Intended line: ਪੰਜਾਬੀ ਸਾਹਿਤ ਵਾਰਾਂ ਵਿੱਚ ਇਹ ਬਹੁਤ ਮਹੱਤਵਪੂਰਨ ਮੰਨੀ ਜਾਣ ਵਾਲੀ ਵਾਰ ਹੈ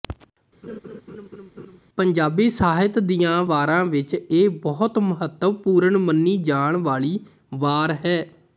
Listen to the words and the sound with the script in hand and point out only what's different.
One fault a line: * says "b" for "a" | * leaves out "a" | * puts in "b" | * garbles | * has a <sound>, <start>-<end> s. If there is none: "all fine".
* has a laugh, 0.6-1.8 s
* puts in "ਦੀਆਂ"